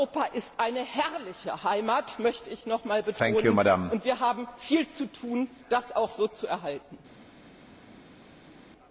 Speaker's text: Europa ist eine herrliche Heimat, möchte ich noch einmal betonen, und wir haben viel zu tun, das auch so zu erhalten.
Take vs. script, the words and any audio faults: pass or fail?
pass